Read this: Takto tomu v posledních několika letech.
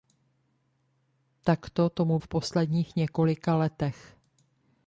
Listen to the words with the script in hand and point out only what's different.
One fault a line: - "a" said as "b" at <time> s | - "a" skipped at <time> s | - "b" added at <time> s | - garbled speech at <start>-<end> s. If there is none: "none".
none